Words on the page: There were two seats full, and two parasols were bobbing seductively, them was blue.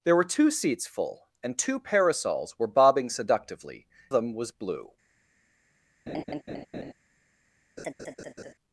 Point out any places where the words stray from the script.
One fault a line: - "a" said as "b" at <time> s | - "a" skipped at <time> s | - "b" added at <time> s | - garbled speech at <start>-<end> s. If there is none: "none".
none